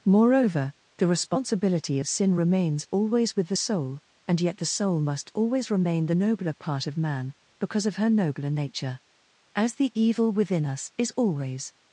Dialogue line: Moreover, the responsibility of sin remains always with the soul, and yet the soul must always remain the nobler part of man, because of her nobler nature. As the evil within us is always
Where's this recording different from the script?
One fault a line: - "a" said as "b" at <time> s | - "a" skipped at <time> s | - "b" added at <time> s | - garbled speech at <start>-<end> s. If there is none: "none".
none